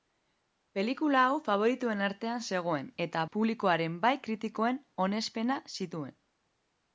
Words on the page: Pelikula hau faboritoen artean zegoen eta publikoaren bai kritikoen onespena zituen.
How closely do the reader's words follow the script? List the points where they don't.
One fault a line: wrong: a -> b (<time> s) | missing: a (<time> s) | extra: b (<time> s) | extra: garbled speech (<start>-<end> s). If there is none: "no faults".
no faults